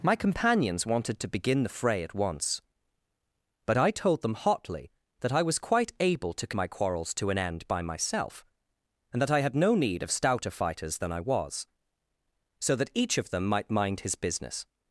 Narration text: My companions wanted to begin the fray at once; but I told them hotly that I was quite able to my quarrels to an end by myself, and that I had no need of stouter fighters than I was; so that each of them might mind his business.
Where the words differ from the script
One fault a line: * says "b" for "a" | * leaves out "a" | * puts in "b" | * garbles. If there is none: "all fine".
all fine